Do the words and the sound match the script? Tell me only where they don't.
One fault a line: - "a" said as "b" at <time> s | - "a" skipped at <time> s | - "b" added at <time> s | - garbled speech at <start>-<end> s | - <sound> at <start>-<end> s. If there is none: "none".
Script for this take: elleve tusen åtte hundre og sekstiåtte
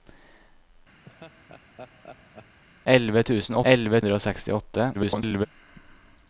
- laugh at 1.0-2.6 s
- "åtte" said as "elleve" at 3.7 s
- garbled speech at 4.9-5.5 s